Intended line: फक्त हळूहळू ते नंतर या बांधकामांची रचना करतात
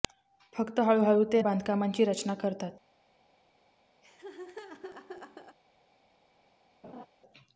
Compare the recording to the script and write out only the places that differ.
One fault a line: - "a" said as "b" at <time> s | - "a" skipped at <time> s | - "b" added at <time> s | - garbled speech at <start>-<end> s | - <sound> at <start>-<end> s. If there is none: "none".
- "नंतर या" skipped at 1.4 s
- laugh at 4.0-5.6 s
- laugh at 6.8-7.1 s